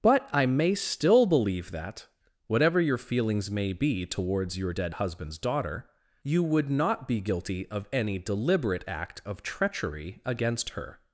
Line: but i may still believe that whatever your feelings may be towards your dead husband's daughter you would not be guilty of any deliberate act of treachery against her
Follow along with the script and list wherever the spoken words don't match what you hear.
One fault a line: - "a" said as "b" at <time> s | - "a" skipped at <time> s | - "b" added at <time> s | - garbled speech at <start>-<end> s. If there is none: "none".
none